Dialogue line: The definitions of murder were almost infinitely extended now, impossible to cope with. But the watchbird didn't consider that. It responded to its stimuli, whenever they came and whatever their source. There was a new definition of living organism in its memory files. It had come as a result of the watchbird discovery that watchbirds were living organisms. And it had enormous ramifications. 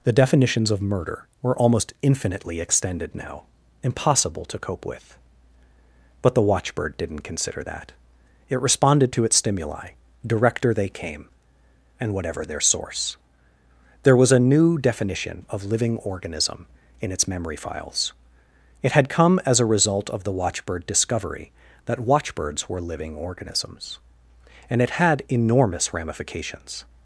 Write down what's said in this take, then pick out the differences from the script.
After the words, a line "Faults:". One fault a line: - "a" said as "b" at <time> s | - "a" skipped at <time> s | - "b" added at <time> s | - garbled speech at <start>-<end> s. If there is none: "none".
The definitions of murder were almost infinitely extended now, impossible to cope with. But the watchbird didn't consider that. It responded to its stimuli, director they came and whatever their source. There was a new definition of living organism in its memory files. It had come as a result of the watchbird discovery that watchbirds were living organisms. And it had enormous ramifications.
Faults:
- "whenever" said as "director" at 10.2 s